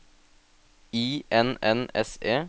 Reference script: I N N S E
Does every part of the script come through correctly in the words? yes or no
yes